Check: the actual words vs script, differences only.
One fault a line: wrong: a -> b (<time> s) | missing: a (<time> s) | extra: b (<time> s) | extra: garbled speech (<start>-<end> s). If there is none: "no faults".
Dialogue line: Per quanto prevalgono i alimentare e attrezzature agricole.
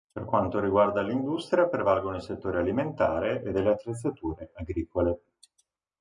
extra: riguarda l'industria (0.6 s)
extra: settori (2.2 s)
extra: delle (3.5 s)